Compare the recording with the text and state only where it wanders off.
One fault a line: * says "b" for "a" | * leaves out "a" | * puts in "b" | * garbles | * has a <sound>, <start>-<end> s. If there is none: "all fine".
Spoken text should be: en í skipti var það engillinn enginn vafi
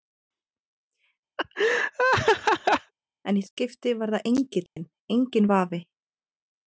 * has a laugh, 1.4-2.9 s
* has a dropout, 4.7-4.8 s